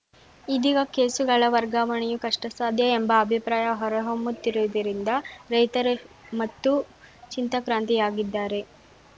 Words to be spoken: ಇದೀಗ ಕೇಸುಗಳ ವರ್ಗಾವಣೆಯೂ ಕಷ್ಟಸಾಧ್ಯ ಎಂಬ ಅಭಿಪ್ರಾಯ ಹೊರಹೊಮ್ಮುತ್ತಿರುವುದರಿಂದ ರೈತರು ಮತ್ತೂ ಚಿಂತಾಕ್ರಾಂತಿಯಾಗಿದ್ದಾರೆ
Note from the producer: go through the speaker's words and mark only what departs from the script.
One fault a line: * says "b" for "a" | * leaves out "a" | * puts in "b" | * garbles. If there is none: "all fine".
all fine